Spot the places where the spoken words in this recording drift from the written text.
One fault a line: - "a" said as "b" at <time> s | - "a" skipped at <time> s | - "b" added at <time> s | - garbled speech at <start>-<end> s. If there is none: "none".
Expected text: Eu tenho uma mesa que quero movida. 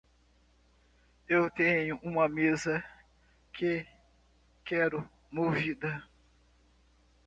none